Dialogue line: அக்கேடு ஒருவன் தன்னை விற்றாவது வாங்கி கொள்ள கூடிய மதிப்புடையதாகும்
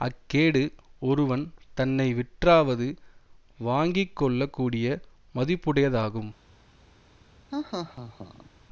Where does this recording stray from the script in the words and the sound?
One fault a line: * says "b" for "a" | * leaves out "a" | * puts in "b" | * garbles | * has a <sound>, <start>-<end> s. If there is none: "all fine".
* has a laugh, 7.5-8.5 s